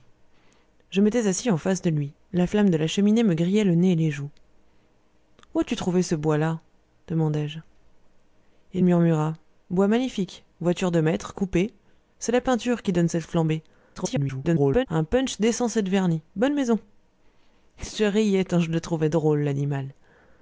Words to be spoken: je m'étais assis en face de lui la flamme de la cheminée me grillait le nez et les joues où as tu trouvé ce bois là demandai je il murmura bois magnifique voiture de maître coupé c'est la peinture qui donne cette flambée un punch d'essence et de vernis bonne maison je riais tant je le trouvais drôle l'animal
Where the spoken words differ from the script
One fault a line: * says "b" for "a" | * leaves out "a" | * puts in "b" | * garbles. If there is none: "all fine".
* garbles